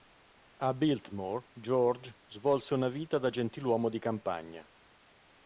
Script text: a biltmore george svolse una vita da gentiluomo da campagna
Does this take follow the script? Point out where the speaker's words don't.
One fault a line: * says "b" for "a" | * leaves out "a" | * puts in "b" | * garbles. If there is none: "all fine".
* says "di" for "da"